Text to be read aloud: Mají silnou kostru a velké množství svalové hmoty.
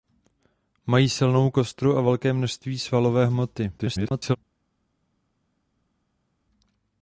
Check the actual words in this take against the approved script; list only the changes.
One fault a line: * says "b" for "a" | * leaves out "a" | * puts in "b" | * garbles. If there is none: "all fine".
* garbles